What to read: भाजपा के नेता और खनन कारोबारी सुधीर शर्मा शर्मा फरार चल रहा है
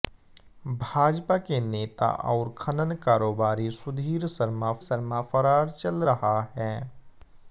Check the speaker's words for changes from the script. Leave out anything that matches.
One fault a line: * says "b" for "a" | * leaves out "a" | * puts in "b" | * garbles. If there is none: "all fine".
all fine